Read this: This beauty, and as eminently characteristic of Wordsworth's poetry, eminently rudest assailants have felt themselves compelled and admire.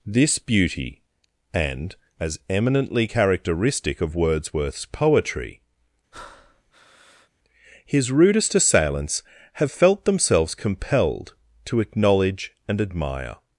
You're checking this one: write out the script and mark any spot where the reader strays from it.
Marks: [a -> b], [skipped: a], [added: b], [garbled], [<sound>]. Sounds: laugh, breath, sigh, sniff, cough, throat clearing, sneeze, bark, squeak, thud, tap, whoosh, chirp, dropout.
This beauty, and as eminently characteristic of Wordsworth's poetry, [breath] [eminently -> his] rudest assailants have felt themselves compelled [added: to acknowledge] and admire.